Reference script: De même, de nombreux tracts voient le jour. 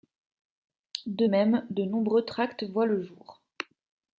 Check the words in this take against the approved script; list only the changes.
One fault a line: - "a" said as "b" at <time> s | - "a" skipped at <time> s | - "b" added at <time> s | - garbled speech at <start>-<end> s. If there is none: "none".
none